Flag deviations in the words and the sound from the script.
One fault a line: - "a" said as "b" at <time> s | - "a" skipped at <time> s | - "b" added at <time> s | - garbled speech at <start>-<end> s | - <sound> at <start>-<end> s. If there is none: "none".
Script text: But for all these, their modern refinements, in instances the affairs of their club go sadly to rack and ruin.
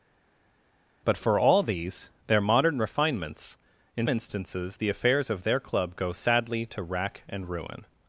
none